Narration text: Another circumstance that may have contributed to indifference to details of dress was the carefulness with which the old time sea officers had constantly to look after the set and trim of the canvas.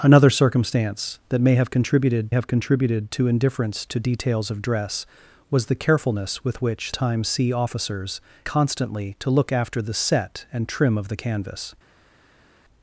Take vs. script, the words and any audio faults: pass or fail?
fail